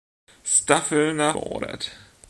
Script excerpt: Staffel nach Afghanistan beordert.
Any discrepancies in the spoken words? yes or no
yes